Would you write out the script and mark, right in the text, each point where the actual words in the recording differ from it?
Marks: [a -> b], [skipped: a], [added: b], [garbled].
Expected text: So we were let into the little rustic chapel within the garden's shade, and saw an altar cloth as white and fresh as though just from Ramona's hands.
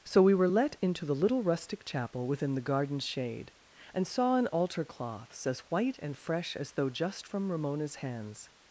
So we were let into the little rustic chapel within the garden's shade, and saw an altar [cloth -> cloths] as white and fresh as though just from Ramona's hands.